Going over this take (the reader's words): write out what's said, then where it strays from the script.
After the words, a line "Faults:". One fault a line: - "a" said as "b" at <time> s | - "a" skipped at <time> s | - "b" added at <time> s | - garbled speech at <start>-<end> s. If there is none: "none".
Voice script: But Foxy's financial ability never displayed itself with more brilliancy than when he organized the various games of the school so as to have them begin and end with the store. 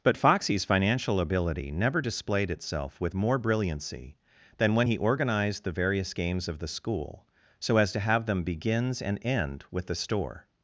But Foxy's financial ability never displayed itself with more brilliancy than when he organized the various games of the school so as to have them begins and end with the store.
Faults:
- "begin" said as "begins" at 8.4 s